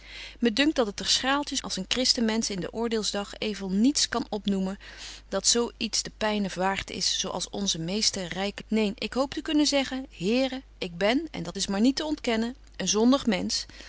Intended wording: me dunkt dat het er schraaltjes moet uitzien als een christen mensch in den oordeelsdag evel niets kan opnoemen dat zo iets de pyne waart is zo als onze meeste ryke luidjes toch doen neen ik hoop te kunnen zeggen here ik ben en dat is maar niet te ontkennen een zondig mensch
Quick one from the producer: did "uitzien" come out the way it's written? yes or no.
no